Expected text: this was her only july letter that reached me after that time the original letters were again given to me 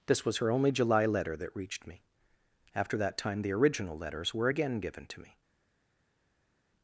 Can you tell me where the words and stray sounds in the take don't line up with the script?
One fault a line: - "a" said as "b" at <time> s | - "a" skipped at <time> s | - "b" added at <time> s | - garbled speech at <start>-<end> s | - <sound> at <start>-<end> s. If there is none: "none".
none